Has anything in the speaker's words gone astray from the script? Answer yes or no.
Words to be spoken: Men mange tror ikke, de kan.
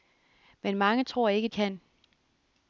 yes